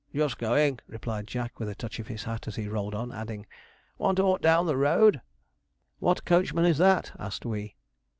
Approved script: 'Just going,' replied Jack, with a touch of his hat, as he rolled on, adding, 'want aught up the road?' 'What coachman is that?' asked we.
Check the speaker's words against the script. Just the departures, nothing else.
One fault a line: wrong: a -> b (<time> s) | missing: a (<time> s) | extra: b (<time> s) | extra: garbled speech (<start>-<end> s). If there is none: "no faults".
wrong: up -> down (4.4 s)